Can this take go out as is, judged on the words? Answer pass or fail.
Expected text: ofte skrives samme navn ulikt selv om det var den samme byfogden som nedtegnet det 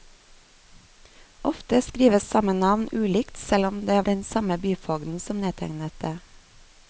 fail